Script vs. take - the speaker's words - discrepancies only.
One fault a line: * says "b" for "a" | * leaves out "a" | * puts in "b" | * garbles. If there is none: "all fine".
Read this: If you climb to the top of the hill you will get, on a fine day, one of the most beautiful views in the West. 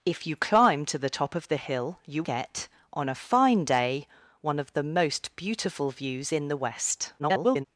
* leaves out "will"
* garbles